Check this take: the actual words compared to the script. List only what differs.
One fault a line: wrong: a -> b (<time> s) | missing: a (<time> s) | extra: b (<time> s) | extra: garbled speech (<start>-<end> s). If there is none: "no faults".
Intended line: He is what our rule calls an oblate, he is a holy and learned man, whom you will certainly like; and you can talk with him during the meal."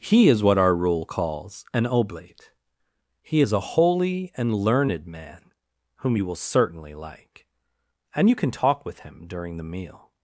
no faults